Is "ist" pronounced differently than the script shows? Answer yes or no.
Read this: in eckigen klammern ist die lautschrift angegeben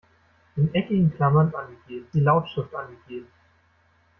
yes